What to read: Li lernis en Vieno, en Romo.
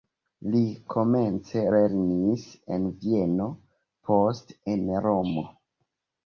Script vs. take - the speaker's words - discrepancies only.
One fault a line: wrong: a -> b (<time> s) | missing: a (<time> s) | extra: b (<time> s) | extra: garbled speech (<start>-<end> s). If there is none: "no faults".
extra: komence (0.9 s)
extra: poste (4.1 s)